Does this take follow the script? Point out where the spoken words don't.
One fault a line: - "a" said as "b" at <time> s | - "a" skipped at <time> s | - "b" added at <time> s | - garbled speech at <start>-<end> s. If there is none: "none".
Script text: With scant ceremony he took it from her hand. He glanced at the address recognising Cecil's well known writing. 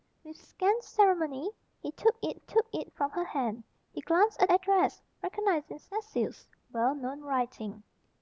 - "took it" added at 2.4 s
- "the" skipped at 4.5 s